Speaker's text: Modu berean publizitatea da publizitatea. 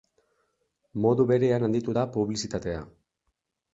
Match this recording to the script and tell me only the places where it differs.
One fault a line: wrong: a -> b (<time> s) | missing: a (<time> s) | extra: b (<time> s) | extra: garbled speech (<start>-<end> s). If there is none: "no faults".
wrong: publizitatea -> handitu (1.7 s)